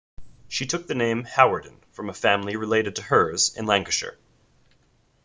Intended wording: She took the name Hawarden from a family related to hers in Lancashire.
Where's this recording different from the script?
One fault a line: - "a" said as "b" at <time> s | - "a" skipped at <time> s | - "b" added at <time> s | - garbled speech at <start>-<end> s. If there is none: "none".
none